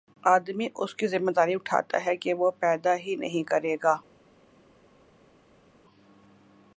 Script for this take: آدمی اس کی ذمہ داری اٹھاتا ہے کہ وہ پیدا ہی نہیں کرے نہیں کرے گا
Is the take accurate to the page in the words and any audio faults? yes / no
no